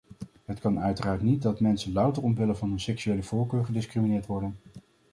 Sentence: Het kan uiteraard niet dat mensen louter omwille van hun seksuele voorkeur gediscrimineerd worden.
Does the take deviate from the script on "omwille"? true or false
false